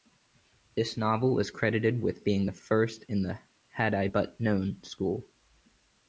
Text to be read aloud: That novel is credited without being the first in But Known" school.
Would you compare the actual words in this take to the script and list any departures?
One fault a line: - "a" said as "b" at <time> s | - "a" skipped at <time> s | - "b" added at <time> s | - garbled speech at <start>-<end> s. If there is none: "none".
- "That" said as "This" at 0.8 s
- "without" said as "with" at 2.0 s
- "the Had I" added at 3.2 s